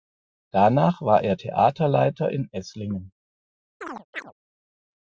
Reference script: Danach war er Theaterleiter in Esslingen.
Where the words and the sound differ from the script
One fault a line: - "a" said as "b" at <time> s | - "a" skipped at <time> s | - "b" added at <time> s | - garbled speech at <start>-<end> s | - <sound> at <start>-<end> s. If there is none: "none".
- chirp at 3.8-4.3 s